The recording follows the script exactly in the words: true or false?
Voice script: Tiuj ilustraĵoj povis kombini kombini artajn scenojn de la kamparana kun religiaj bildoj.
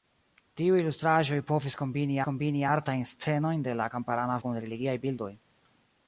true